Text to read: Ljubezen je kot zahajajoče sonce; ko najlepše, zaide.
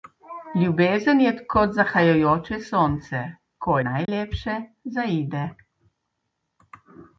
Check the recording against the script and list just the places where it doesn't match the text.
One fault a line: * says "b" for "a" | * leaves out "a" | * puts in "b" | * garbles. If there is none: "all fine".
all fine